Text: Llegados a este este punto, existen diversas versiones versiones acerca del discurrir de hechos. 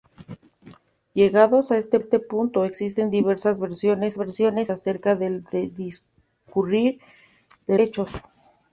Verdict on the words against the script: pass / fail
pass